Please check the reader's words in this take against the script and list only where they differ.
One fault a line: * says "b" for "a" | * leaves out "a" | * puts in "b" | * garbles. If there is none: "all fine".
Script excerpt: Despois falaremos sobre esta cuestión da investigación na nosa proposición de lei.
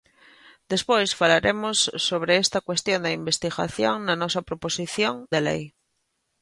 all fine